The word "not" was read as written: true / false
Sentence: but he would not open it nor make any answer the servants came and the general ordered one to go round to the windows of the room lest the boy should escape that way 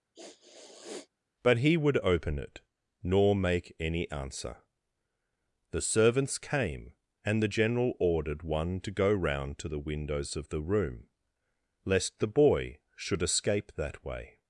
false